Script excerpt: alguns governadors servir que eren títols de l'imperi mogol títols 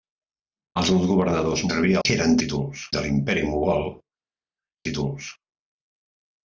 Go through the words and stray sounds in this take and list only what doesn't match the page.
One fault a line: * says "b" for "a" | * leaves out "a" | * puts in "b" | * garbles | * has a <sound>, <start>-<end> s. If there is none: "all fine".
all fine